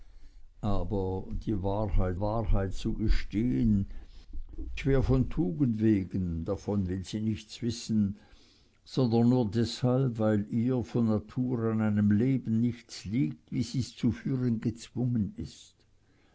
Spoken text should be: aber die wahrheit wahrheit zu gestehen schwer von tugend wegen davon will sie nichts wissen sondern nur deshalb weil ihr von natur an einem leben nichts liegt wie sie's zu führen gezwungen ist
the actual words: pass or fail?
pass